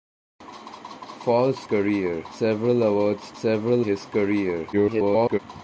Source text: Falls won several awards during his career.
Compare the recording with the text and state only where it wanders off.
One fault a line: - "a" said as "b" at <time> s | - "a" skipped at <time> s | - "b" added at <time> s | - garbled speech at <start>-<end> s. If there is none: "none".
- "won" said as "career" at 1.6 s
- "during" said as "several" at 3.3 s
- garbled speech at 4.7-5.4 s